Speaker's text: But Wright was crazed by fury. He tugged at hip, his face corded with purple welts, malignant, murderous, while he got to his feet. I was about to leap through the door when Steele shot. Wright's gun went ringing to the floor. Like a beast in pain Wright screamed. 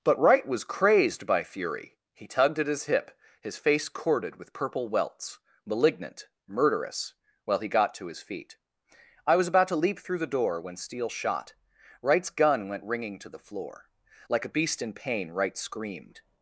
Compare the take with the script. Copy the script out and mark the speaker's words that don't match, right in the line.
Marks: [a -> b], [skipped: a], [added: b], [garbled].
But Wright was crazed by fury. He tugged at [added: his] hip, his face corded with purple welts, malignant, murderous, while he got to his feet. I was about to leap through the door when Steele shot. Wright's gun went ringing to the floor. Like a beast in pain Wright screamed.